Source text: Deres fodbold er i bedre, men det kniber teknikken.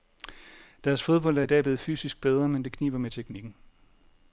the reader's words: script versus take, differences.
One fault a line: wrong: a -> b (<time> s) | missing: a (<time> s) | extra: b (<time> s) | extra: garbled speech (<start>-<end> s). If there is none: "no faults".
extra: dag blevet fysisk (1.5 s)
extra: med (3.0 s)